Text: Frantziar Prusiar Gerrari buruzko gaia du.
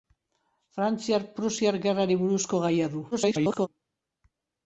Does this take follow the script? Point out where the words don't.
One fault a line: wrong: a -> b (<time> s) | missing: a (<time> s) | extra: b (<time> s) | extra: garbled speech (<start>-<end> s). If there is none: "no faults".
extra: garbled speech (3.1-3.7 s)